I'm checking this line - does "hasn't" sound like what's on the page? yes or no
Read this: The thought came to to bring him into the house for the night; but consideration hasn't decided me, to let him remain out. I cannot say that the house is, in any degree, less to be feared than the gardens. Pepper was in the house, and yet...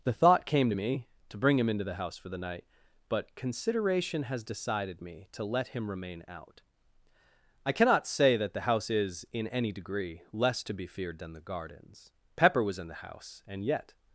no